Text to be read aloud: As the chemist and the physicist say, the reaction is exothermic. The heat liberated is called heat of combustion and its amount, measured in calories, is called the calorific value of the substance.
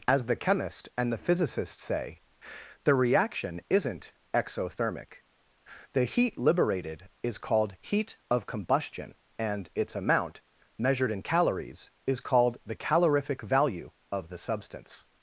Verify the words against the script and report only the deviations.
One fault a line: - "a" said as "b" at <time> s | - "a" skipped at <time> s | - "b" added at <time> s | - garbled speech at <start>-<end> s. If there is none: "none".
- "is" said as "isn't" at 3.7 s